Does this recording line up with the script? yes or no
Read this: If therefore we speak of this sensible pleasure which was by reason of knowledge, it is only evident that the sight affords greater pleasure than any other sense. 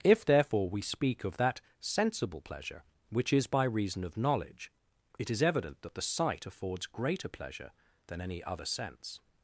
no